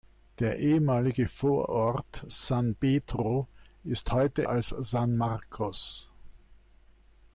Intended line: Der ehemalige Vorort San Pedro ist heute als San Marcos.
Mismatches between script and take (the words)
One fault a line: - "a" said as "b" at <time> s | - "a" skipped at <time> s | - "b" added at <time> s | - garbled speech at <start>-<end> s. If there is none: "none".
none